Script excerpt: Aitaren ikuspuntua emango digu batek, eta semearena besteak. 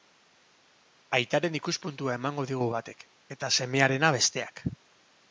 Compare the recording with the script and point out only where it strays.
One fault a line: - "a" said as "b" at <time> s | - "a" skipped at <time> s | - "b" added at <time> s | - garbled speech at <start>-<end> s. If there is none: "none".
none